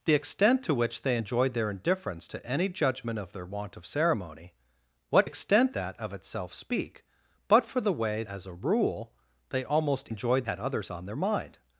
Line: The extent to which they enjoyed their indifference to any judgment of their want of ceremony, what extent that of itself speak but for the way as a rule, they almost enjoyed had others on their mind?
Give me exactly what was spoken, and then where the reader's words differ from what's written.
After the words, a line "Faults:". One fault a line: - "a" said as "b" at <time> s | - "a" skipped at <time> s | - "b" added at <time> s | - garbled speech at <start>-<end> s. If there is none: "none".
The extent to which they enjoyed their indifference to any judgment of their want of ceremony, what extent that of itself speak but for the way as a rule, they almost enjoyed had others on their mind?
Faults:
none